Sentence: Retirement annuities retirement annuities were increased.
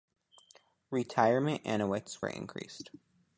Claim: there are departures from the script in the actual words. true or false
true